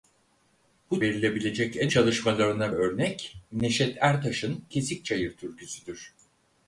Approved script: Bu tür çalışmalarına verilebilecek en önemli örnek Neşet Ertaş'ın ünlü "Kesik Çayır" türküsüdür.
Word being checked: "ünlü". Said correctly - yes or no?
no